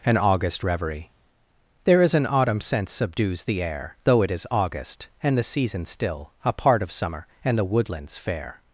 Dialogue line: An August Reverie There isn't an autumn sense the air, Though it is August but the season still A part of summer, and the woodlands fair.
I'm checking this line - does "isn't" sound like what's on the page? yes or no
no